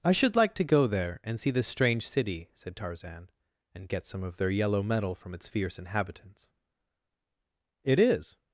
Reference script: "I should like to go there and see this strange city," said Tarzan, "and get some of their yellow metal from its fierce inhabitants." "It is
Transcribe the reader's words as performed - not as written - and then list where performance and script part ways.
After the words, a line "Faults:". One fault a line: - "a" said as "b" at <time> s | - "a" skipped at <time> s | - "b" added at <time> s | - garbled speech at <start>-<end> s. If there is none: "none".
"I should like to go there and see this strange city," said Tarzan, "and get some of their yellow metal from its fierce inhabitants." "It is
Faults:
none